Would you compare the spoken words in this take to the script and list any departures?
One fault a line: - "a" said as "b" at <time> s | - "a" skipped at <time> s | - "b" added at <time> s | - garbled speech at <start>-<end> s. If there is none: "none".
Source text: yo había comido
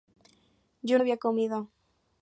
none